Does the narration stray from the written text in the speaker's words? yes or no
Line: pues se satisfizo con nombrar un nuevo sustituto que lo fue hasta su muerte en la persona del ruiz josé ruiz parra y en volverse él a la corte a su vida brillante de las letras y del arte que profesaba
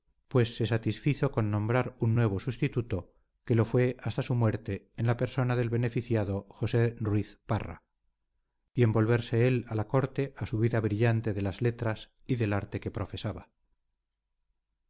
yes